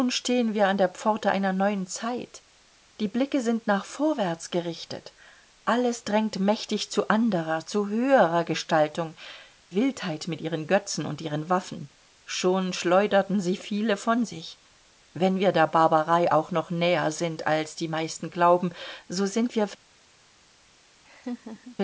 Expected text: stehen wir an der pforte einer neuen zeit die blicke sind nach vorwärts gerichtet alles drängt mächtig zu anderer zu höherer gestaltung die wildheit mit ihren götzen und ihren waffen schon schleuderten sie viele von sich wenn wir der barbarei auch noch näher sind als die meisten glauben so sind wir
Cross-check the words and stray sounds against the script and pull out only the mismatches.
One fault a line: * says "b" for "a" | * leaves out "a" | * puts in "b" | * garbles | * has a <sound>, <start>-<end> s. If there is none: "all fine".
* leaves out "die"
* has a laugh, 21.0-21.8 s